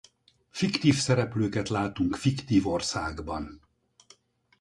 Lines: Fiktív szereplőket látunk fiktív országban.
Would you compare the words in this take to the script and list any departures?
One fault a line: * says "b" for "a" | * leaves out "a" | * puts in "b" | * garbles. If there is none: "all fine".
all fine